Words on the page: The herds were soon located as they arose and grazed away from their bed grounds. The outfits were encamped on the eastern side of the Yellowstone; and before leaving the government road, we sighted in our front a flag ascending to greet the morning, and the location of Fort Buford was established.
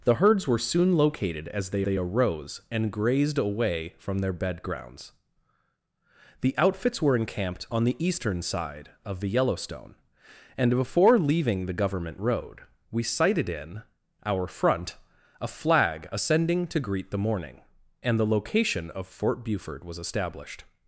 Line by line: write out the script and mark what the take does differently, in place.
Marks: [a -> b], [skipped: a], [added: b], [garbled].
The herds were soon located as they [added: they] arose and grazed away from their bed grounds. The outfits were encamped on the eastern side of the Yellowstone; and before leaving the government road, we sighted in our front a flag ascending to greet the morning, and the location of Fort Buford was established.